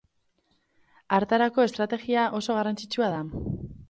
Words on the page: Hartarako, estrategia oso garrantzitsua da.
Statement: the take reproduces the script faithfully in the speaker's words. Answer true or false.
true